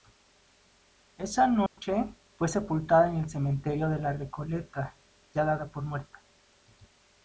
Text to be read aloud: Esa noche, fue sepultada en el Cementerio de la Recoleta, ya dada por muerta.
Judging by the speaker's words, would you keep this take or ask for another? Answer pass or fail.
pass